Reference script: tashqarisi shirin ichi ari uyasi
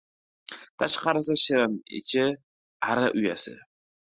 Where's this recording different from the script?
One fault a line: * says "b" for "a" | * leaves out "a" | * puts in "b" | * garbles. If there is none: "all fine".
all fine